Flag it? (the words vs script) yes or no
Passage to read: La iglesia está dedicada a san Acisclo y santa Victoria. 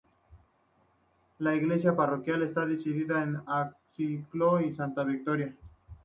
yes